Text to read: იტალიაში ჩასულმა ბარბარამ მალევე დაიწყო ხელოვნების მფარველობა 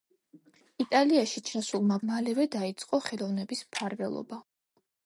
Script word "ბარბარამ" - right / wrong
wrong